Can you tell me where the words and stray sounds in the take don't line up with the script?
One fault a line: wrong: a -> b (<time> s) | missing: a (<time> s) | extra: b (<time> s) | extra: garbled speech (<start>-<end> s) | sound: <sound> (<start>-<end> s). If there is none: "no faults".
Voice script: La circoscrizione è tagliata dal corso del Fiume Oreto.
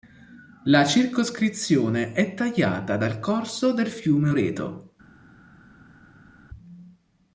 no faults